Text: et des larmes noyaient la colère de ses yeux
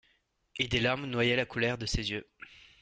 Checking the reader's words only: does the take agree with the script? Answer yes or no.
yes